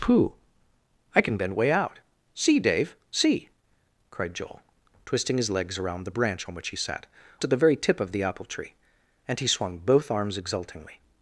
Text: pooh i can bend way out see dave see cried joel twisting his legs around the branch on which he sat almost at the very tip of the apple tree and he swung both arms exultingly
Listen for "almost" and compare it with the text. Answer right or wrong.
wrong